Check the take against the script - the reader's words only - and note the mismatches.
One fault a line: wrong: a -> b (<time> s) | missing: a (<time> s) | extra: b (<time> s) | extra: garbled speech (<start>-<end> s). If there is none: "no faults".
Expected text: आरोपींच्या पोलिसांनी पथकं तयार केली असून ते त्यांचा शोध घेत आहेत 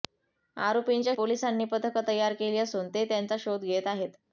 no faults